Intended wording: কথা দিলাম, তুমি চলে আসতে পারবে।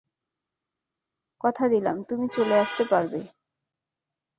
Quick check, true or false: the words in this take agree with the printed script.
true